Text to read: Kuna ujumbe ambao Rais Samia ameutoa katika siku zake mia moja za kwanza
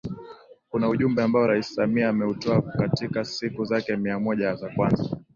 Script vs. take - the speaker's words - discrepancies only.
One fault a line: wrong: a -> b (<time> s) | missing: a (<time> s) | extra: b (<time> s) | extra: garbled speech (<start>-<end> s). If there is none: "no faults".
no faults